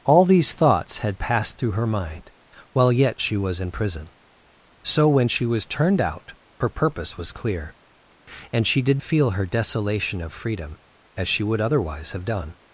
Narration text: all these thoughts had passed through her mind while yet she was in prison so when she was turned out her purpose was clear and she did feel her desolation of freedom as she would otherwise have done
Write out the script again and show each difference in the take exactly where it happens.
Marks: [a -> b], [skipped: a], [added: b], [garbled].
all these thoughts had passed through her mind while yet she was in prison so when she was turned out her purpose was clear and she did feel her desolation of freedom as she would otherwise have done